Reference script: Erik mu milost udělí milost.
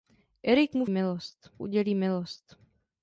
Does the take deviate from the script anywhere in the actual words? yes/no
no